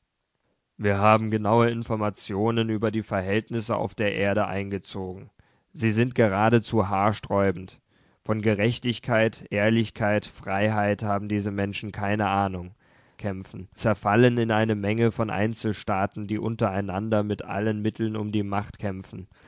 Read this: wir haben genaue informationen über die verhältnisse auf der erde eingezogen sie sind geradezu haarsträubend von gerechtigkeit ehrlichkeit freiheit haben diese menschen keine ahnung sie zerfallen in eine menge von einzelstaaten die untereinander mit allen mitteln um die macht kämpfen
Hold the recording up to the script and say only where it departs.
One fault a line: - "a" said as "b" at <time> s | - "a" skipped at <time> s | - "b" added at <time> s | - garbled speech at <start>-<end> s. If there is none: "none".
- "sie" said as "kämpfen" at 13.2 s